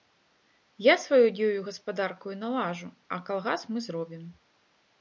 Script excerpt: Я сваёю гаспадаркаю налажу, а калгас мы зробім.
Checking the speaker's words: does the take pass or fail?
pass